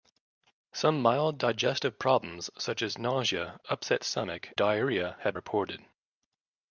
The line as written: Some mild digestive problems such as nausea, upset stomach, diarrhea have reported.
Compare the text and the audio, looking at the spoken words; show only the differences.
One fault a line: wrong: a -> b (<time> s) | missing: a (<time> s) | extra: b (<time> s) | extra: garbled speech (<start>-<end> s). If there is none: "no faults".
no faults